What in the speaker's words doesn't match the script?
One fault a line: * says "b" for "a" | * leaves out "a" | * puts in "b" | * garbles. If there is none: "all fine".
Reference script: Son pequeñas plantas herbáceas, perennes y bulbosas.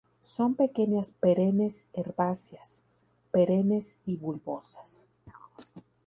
* says "perennes" for "plantas"